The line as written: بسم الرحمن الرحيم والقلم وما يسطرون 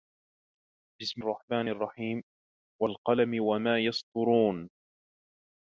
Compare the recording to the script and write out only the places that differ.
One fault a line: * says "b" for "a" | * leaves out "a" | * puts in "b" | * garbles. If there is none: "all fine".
all fine